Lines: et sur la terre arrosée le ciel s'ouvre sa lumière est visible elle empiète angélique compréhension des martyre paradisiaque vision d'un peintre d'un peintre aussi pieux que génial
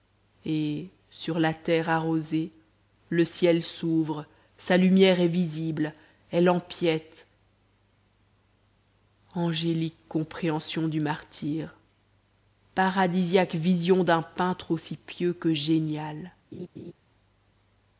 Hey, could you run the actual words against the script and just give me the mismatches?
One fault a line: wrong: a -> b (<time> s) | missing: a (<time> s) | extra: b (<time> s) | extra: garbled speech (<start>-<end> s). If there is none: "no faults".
wrong: des -> du (10.9 s)
missing: d'un peintre (14.7 s)